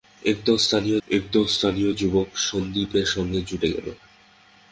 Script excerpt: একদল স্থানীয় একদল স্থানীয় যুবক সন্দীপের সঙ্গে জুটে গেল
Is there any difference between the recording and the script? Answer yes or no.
no